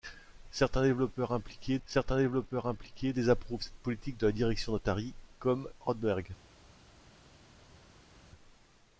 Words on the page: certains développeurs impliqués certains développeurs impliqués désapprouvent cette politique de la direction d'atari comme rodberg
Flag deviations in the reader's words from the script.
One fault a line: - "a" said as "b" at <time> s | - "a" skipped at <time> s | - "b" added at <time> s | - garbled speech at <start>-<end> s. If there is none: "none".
none